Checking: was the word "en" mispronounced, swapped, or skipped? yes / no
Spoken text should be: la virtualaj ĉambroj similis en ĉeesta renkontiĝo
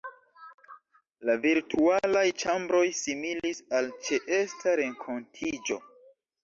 yes